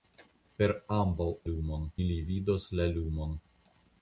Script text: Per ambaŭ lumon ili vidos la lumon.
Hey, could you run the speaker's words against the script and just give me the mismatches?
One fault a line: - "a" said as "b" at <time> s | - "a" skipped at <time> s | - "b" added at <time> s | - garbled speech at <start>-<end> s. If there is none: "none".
none